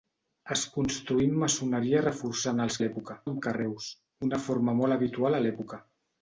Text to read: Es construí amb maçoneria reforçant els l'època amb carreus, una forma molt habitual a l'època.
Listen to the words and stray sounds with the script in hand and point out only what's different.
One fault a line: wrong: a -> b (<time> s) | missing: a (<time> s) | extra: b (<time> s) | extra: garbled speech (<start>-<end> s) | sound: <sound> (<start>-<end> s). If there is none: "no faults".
no faults